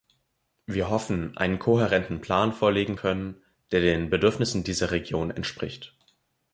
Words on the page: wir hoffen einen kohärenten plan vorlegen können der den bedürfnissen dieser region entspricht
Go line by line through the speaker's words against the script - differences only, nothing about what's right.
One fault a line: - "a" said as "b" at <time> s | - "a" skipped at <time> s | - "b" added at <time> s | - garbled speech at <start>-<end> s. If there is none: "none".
none